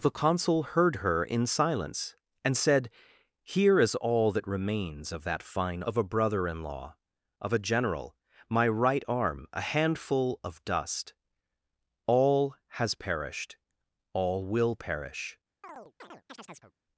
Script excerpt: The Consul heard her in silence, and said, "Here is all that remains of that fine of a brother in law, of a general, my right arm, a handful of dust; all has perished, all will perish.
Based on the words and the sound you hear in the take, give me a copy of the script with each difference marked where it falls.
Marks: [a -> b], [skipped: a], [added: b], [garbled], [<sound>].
The Consul heard her in silence, and said, "Here is all that remains of that fine of a brother in law, of a general, my right arm, a handful of dust; all has perished, all will perish. [chirp]